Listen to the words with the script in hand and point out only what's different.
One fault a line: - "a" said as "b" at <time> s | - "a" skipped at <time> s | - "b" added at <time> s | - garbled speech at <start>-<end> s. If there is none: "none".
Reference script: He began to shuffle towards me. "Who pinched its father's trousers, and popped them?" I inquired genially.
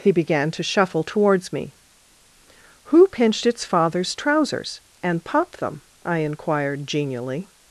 none